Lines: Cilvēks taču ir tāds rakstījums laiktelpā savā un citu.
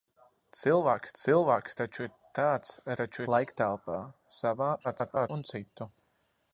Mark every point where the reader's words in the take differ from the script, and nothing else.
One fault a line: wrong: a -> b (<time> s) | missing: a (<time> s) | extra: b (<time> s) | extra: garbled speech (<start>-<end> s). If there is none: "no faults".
extra: cilvēks (1.2 s)
wrong: rakstījums -> taču (3.0 s)
extra: garbled speech (4.8-5.3 s)